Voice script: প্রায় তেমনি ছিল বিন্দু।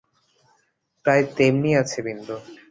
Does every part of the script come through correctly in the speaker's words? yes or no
no